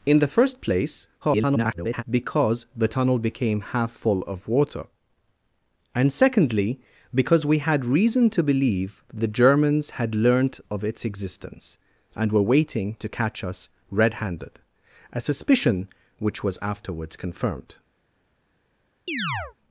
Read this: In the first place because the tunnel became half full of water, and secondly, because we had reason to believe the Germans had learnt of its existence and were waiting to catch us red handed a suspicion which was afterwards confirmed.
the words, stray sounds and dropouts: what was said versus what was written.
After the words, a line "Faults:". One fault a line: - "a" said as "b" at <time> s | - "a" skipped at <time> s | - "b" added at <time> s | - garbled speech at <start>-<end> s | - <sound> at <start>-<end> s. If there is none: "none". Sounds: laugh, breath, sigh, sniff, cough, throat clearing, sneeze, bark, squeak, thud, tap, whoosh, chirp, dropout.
In the first place [garbled] because the tunnel became half full of water, and secondly, because we had reason to believe the Germans had learnt of its existence and were waiting to catch us red handed a suspicion which was afterwards confirmed.
Faults:
- garbled speech at 1.2-2.0 s
- chirp at 19.1-19.5 s